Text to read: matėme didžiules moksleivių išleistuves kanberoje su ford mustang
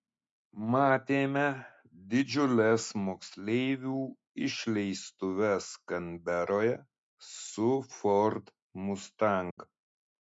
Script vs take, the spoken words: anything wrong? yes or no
no